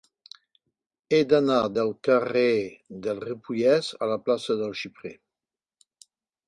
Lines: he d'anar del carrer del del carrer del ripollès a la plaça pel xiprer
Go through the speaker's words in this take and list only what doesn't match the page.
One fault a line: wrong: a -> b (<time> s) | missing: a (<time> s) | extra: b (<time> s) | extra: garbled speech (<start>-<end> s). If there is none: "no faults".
missing: del carrer del (3.2 s)
wrong: pel -> del (4.6 s)